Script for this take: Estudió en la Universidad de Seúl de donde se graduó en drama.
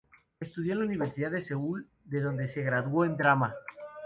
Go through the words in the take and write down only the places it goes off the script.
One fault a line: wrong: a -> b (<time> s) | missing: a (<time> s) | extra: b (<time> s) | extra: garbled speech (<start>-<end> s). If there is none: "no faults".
no faults